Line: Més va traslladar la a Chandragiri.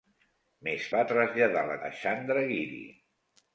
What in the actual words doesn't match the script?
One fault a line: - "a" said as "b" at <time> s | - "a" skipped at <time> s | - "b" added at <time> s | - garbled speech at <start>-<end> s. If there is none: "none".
none